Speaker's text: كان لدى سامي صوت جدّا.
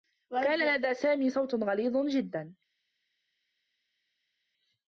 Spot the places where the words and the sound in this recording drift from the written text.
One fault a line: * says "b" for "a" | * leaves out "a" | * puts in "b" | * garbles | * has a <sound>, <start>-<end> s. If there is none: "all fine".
* puts in "غليظ"